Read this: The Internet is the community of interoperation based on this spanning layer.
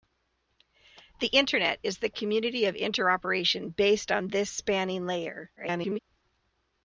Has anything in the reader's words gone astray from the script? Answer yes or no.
yes